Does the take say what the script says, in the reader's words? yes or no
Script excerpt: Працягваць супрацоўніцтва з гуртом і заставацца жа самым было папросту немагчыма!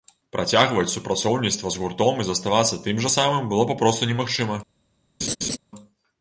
no